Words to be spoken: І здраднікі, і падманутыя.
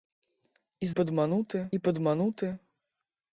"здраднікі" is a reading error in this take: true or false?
true